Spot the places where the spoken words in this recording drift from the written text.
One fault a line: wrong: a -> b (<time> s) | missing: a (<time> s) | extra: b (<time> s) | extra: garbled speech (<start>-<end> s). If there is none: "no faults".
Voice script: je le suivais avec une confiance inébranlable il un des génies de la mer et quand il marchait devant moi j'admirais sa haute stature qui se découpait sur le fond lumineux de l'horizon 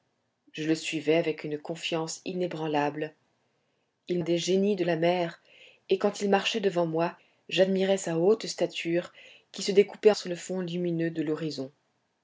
no faults